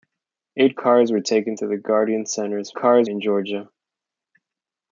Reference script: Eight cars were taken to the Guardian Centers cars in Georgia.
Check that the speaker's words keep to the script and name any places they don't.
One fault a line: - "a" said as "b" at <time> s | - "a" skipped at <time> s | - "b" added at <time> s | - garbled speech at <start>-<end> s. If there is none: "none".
none